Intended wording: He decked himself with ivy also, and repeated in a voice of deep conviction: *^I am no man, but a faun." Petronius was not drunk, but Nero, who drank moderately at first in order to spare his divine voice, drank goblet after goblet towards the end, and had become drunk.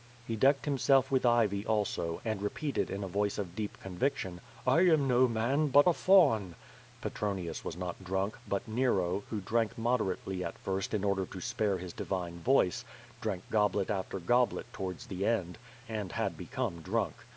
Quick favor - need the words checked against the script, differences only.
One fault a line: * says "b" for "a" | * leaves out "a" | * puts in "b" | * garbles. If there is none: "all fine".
all fine